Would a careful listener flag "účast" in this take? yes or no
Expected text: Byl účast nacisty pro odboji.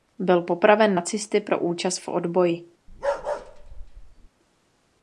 yes